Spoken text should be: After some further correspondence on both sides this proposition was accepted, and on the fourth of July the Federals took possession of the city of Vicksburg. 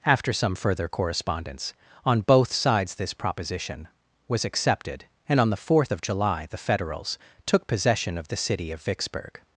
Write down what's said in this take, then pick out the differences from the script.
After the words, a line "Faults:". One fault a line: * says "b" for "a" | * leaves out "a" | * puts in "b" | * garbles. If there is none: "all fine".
After some further correspondence on both sides this proposition was accepted, and on the fourth of July the Federals took possession of the city of Vicksburg.
Faults:
all fine